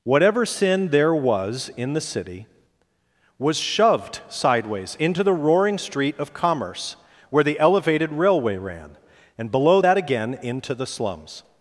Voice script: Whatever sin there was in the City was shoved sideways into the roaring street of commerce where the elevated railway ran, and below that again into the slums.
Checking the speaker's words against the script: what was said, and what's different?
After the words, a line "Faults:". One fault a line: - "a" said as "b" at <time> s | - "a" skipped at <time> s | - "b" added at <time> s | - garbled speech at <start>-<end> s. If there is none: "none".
Whatever sin there was in the City was shoved sideways into the roaring street of commerce where the elevated railway ran, and below that again into the slums.
Faults:
none